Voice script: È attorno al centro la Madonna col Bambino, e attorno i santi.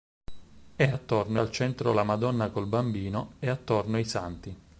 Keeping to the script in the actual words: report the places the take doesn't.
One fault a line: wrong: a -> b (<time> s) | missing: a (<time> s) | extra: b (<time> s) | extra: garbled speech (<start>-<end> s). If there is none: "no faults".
no faults